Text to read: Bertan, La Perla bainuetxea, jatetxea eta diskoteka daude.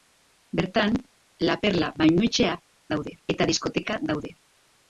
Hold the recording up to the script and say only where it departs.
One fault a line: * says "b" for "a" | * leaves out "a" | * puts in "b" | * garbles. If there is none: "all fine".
* says "daude" for "jatetxea"